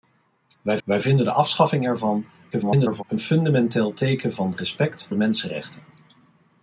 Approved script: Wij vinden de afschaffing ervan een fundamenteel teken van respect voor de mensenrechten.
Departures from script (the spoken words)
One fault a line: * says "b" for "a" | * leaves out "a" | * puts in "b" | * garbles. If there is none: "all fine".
* puts in "wij"
* garbles
* leaves out "voor"